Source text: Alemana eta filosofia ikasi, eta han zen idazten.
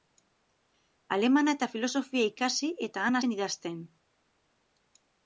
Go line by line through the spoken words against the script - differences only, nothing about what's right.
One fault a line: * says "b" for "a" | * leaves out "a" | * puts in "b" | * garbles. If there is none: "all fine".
all fine